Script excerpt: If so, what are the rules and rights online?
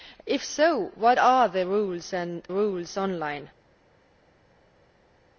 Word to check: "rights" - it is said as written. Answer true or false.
false